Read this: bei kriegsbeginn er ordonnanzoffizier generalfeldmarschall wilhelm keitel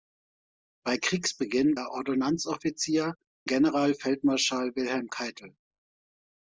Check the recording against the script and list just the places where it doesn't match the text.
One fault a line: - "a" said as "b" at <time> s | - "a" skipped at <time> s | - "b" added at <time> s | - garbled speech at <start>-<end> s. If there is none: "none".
none